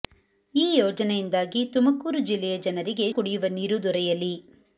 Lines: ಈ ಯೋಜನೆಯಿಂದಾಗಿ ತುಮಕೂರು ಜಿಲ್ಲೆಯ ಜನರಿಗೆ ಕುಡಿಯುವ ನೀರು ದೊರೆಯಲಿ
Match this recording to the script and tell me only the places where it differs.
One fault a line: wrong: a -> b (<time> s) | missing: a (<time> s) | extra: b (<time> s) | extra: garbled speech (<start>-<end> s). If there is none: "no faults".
no faults